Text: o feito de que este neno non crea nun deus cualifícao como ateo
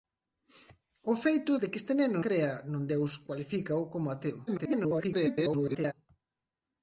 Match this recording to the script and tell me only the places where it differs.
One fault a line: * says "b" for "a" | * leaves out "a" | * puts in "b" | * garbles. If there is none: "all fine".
* leaves out "non"
* garbles